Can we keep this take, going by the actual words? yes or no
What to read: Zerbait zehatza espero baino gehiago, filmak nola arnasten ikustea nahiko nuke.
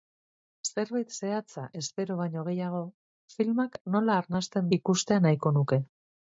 yes